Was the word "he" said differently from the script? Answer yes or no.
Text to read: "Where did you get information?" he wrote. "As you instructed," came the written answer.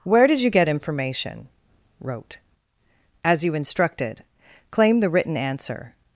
yes